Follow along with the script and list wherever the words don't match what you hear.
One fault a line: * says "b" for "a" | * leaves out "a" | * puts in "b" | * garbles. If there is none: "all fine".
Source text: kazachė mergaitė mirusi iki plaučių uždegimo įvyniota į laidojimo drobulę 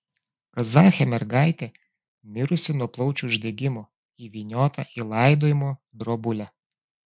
* says "nuo" for "iki"